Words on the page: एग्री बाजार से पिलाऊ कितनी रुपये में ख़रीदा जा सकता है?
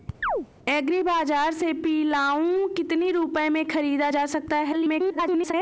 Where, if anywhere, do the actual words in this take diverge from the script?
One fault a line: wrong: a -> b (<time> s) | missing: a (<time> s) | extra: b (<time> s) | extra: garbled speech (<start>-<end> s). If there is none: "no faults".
extra: garbled speech (4.7-5.5 s)